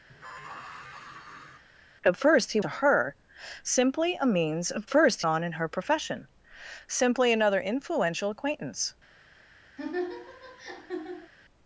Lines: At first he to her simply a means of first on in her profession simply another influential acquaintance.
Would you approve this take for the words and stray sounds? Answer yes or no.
no